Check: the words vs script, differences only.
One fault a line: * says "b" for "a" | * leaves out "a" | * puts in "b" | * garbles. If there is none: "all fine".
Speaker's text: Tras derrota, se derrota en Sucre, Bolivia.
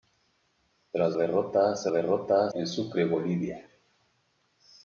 all fine